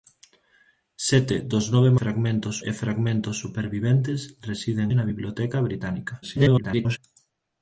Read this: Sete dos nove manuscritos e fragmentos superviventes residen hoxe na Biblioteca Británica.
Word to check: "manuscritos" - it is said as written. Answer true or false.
false